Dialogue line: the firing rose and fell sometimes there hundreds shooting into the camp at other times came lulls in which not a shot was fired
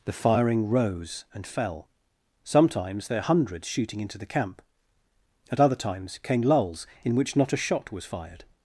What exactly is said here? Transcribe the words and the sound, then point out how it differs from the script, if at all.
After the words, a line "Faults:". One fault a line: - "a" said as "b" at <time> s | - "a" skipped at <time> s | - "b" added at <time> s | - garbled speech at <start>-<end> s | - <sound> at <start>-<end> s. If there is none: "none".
the firing rose and fell sometimes there hundreds shooting into the camp at other times came lulls in which not a shot was fired
Faults:
none